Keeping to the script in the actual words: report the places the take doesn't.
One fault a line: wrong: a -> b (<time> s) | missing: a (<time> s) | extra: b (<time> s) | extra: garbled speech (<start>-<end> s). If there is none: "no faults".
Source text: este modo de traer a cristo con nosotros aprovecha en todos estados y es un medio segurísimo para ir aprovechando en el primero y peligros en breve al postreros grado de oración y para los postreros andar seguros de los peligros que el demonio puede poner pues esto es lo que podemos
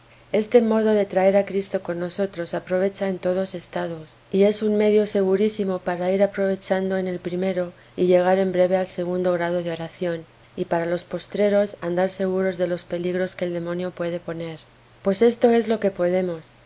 wrong: peligros -> llegar (8.1 s)
wrong: postreros -> segundo (8.9 s)